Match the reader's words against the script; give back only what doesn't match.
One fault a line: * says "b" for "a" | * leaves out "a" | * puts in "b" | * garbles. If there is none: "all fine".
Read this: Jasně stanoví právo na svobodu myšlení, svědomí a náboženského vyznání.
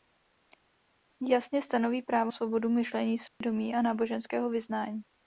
* leaves out "na"